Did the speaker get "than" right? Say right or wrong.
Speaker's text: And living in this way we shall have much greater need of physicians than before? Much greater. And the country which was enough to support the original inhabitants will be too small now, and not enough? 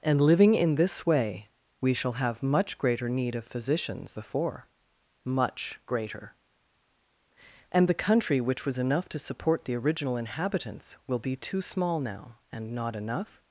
wrong